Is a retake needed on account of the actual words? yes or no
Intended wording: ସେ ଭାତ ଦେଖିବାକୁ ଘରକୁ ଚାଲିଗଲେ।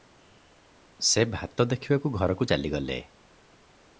no